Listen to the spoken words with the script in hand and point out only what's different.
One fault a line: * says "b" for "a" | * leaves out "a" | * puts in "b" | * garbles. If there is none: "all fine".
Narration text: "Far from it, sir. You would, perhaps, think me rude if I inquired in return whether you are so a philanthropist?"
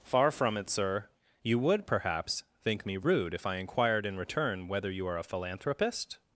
* leaves out "so"